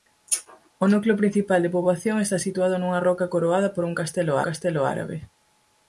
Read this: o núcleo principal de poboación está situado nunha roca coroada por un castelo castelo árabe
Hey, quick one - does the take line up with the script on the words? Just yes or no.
yes